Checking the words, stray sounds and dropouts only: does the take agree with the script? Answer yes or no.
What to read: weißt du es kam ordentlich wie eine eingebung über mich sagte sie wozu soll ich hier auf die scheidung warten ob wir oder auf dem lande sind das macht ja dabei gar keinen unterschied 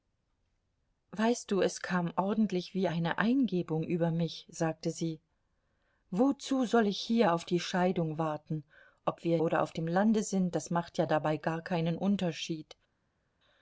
yes